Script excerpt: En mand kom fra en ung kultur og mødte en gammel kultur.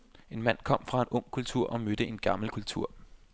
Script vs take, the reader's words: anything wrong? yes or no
no